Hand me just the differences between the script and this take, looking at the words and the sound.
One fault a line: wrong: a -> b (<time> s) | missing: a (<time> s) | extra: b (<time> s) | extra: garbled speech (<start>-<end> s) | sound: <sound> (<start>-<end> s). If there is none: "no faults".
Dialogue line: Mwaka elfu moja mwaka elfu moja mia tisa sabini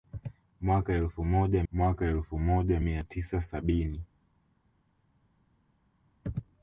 no faults